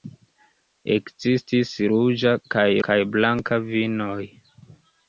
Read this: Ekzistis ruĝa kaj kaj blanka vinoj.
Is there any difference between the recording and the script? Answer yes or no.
no